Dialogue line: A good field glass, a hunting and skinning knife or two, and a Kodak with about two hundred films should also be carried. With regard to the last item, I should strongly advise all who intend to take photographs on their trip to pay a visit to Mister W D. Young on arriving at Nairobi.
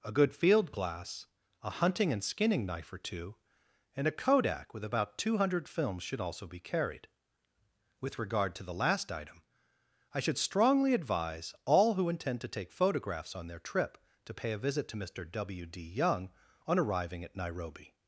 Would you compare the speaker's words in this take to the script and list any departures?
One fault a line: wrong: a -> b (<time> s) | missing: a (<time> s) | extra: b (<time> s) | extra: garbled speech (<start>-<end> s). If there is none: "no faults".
no faults